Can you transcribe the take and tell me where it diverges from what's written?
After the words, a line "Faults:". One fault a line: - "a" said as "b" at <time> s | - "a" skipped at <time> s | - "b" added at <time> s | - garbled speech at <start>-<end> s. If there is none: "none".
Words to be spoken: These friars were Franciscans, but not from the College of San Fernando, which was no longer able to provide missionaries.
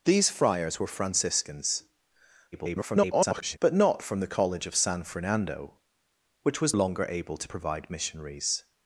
These friars were Franciscans, [garbled] but not from the College of San Fernando, which was longer able to provide missionaries.
Faults:
- garbled speech at 2.5-3.6 s
- "no" skipped at 6.7 s